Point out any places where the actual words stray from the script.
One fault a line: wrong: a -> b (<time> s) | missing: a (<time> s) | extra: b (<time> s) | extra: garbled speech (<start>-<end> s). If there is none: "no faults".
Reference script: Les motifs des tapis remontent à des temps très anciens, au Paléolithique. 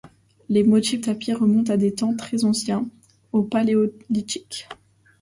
missing: des (1.0 s)